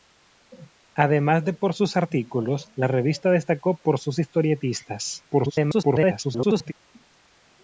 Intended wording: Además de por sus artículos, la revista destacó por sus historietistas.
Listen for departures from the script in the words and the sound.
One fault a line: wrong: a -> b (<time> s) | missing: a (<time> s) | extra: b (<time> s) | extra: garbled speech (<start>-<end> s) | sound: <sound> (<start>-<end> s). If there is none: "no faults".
extra: garbled speech (5.3-6.7 s)